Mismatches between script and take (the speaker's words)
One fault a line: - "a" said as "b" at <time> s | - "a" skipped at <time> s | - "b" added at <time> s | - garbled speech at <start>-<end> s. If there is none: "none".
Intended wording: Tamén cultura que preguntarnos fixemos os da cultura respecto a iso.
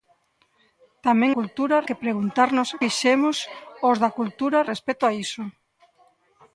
none